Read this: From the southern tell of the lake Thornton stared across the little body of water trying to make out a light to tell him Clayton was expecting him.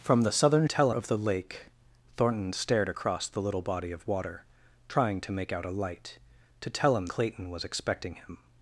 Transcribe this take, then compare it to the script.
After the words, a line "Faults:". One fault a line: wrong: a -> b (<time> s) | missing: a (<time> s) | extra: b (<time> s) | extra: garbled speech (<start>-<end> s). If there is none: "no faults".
From the southern tell of the lake Thornton stared across the little body of water trying to make out a light to tell him Clayton was expecting him.
Faults:
no faults